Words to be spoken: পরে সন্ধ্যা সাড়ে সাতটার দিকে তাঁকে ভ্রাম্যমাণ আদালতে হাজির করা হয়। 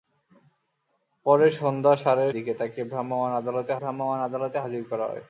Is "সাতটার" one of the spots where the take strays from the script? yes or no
yes